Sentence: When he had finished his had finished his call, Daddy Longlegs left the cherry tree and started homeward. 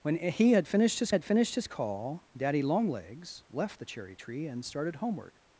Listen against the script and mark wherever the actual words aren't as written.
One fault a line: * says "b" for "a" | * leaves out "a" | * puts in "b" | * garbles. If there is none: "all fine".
all fine